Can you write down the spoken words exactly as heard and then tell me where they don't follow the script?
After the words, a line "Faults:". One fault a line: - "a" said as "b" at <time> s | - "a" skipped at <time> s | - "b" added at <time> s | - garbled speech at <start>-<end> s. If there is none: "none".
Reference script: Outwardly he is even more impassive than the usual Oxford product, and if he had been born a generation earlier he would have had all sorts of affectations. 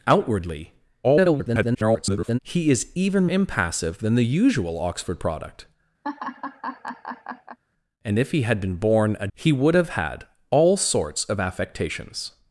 Outwardly [garbled] he is even impassive than the usual Oxford product, and if he had been born a he would have had all sorts of affectations.
Faults:
- garbled speech at 1.0-2.4 s
- "more" skipped at 3.3 s
- "generation earlier" skipped at 9.3 s